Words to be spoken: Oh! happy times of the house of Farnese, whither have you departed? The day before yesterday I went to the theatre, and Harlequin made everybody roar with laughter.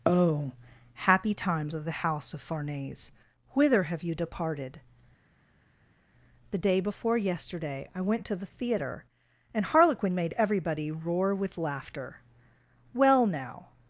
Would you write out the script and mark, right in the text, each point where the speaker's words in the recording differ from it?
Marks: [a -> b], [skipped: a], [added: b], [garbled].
Oh! happy times of the house of Farnese, whither have you departed? The day before yesterday I went to the theatre, and Harlequin made everybody roar with laughter. [added: Well now]